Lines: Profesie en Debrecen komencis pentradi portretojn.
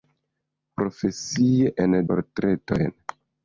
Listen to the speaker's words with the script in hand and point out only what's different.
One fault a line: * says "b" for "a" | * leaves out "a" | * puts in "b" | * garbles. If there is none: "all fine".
* leaves out "Debrecen komencis pentradi"